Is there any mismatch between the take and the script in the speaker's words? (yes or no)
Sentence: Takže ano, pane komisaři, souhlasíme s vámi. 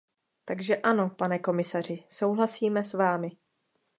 no